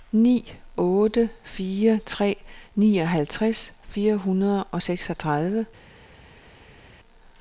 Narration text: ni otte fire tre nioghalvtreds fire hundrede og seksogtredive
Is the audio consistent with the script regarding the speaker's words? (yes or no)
yes